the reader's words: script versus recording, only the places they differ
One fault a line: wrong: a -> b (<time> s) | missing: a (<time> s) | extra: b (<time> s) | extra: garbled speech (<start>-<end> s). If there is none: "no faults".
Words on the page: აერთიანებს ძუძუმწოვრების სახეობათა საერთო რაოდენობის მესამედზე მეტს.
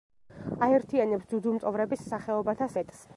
missing: საერთო რაოდენობის მესამედზე (2.7 s)